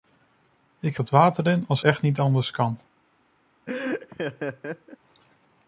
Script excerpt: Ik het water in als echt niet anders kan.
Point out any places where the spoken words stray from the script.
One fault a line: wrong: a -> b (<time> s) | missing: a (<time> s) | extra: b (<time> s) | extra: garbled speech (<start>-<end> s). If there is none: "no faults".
no faults